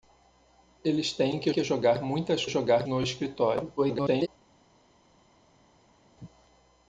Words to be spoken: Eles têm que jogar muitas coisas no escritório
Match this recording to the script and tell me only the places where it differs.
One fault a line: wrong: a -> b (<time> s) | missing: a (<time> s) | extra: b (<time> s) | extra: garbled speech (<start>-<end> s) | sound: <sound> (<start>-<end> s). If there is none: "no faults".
extra: que (1.5 s)
wrong: coisas -> jogar (2.5 s)
extra: garbled speech (3.8-4.3 s)